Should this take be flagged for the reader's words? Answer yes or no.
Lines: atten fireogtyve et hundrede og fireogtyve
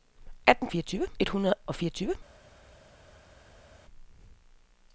no